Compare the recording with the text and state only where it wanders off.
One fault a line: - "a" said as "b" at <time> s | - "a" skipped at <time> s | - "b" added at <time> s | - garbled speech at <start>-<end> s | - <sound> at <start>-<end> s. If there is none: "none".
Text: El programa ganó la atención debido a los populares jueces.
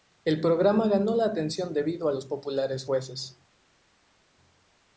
none